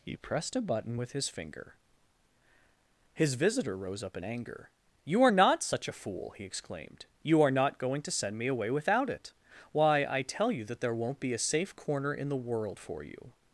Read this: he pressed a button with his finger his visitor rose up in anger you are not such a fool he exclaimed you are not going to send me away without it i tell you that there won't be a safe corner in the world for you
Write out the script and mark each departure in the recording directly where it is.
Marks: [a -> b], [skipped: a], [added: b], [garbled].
he pressed a button with his finger his visitor rose up in anger you are not such a fool he exclaimed you are not going to send me away without it [added: why] i tell you that there won't be a safe corner in the world for you